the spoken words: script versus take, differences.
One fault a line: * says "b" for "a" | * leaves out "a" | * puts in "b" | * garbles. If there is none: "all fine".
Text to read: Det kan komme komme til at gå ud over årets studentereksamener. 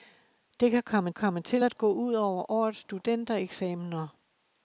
all fine